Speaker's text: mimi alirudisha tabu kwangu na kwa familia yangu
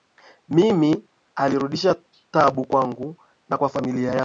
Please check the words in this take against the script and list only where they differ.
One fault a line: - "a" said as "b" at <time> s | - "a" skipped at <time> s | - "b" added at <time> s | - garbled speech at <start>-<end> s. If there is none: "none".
none